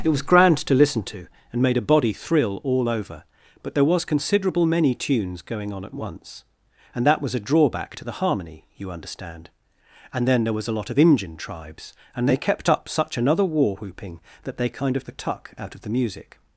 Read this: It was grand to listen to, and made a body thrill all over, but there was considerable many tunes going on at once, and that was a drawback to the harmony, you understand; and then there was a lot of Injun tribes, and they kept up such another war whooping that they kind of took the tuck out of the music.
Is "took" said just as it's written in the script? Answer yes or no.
no